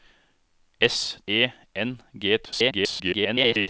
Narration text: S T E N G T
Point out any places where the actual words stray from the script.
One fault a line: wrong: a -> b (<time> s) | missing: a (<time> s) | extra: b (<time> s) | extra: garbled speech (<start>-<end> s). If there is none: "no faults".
missing: T (1.2 s)
extra: garbled speech (2.4-3.7 s)